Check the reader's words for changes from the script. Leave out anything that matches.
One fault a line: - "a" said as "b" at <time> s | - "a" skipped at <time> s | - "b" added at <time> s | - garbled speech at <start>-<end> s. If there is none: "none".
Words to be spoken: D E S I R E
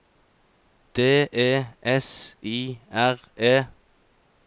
none